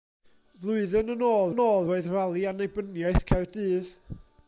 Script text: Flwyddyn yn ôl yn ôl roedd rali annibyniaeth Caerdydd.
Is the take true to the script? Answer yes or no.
yes